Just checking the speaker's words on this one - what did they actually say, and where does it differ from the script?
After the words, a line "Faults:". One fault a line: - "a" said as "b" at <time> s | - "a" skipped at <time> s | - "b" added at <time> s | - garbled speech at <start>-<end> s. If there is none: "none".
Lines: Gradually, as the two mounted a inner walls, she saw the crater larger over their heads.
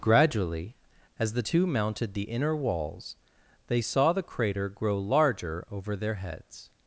Gradually, as the two mounted the inner walls, they saw the crater grow larger over their heads.
Faults:
- "a" said as "the" at 2.1 s
- "she" said as "they" at 3.7 s
- "grow" added at 4.7 s